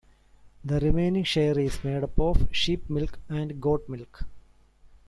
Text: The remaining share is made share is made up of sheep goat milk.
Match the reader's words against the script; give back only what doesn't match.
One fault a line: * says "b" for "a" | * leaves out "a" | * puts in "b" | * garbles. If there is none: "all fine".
* leaves out "share is made"
* puts in "milk and"